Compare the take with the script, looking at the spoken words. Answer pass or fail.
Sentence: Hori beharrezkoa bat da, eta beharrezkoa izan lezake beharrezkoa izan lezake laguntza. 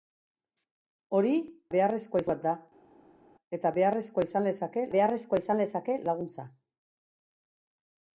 pass